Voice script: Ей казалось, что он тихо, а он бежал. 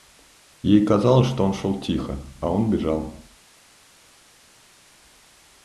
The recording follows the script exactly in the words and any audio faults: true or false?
false